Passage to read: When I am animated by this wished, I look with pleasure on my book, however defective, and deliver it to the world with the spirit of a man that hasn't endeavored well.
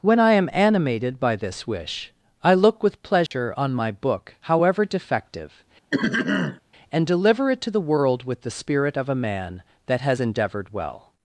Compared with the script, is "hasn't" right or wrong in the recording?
wrong